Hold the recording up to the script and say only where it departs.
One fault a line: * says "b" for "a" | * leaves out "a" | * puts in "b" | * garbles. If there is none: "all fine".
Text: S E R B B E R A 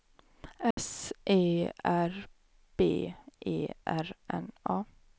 * leaves out "B"
* puts in "N"